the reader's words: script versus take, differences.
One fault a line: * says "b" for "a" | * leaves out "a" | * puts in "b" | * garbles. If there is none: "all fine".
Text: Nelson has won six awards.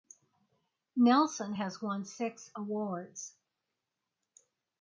all fine